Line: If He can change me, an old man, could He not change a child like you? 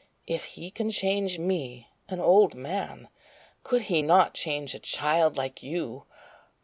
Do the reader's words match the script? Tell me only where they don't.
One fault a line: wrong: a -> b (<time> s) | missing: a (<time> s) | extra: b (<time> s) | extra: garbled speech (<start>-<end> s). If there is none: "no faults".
no faults